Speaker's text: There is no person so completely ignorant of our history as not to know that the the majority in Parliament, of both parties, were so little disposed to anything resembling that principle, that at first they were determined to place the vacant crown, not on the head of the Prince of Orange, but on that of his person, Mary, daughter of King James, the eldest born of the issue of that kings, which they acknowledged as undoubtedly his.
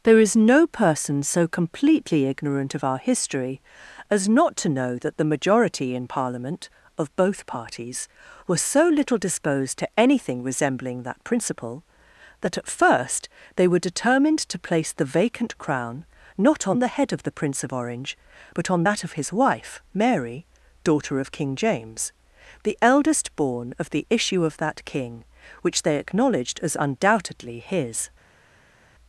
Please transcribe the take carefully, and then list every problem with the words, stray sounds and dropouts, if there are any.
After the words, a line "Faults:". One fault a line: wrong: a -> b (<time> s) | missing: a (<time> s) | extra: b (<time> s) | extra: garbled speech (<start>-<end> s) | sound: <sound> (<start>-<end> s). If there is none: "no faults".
There is no person so completely ignorant of our history as not to know that the majority in Parliament, of both parties, were so little disposed to anything resembling that principle, that at first they were determined to place the vacant crown, not on the head of the Prince of Orange, but on that of his wife, Mary, daughter of King James, the eldest born of the issue of that king, which they acknowledged as undoubtedly his.
Faults:
missing: the (5.3 s)
wrong: person -> wife (19.3 s)
wrong: kings -> king (24.8 s)